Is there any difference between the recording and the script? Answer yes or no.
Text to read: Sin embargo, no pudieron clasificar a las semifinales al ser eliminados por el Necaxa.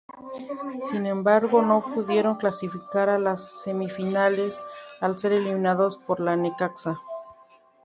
no